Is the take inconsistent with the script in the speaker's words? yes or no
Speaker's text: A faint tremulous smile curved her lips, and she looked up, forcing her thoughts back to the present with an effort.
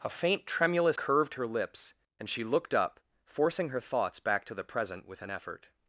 yes